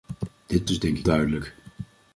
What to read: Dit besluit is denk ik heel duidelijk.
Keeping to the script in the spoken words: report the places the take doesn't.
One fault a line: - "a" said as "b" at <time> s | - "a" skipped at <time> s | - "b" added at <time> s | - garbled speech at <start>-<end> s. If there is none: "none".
- "besluit" skipped at 0.7 s
- "heel" skipped at 1.1 s